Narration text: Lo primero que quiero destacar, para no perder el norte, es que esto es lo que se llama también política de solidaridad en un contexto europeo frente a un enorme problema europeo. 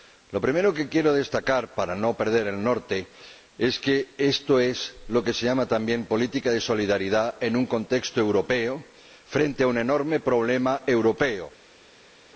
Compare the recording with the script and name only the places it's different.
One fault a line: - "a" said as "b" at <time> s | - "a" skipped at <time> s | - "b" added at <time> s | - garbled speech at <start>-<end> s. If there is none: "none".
none